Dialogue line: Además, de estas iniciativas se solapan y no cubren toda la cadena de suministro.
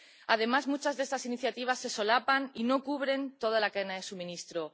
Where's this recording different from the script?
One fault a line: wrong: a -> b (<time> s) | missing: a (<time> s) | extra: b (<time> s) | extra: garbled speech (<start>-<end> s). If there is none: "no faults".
extra: muchas (0.7 s)